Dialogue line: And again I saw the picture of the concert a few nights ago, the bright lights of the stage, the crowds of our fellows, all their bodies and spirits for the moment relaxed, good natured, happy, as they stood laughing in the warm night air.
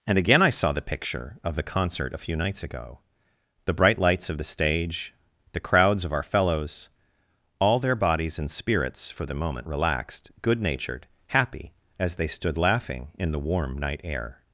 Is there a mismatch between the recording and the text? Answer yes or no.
no